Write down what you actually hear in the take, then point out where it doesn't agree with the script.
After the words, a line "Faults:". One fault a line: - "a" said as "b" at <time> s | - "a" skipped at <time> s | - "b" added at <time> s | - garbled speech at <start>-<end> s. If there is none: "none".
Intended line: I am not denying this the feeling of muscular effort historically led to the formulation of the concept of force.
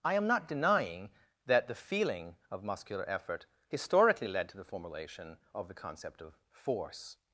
I am not denying that the feeling of muscular effort historically led to the formulation of the concept of force.
Faults:
- "this" said as "that" at 1.4 s